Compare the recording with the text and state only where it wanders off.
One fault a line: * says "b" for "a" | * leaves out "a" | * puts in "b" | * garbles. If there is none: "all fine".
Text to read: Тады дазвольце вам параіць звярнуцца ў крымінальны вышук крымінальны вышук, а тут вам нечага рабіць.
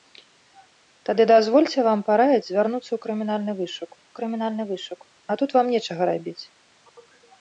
all fine